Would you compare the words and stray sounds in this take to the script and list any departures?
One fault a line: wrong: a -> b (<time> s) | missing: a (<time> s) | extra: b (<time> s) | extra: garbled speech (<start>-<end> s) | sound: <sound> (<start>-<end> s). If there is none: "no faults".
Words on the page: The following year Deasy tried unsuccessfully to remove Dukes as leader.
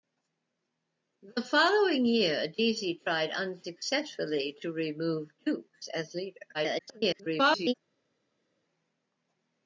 extra: garbled speech (6.5-7.7 s)